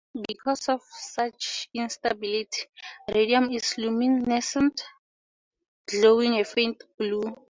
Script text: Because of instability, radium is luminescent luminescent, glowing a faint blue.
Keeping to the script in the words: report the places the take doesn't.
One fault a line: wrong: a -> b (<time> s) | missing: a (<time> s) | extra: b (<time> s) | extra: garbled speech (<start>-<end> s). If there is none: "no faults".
extra: such (0.8 s)
missing: luminescent (4.8 s)